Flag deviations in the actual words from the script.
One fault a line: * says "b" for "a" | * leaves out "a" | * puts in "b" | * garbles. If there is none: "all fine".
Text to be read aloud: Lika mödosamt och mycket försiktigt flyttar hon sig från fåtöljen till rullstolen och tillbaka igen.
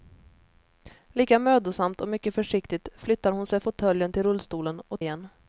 * leaves out "från"
* leaves out "tillbaka"